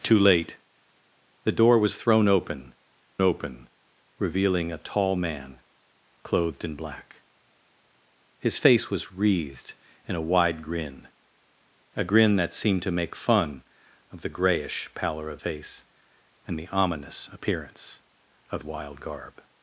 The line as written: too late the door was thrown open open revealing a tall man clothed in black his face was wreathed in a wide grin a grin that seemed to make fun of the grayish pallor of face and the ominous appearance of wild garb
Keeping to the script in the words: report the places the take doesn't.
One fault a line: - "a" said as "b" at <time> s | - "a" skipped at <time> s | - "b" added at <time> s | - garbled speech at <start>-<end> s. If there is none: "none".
none